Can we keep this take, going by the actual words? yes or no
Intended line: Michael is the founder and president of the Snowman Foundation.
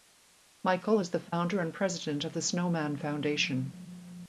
yes